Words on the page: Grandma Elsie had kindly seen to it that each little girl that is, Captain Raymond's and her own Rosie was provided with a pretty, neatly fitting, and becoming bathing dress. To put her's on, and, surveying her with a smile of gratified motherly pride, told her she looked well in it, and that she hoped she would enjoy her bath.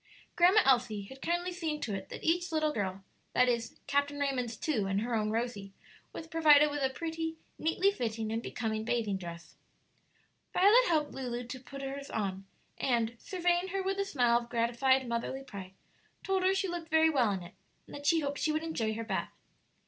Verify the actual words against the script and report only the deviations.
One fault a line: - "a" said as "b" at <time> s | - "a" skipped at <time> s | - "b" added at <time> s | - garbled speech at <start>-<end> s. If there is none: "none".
- "two" added at 4.5 s
- "Violet helped Lulu" added at 10.5 s
- "very" added at 16.9 s